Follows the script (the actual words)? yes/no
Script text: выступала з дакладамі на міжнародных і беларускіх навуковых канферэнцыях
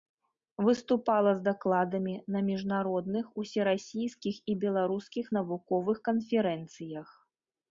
no